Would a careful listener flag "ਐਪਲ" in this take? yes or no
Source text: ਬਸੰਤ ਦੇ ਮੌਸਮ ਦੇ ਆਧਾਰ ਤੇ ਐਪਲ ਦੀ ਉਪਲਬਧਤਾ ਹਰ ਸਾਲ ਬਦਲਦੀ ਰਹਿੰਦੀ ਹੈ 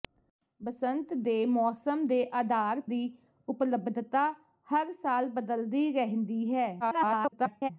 yes